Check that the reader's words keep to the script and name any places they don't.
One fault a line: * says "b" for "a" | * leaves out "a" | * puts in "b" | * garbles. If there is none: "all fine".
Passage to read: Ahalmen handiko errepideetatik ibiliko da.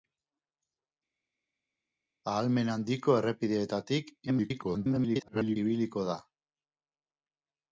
* garbles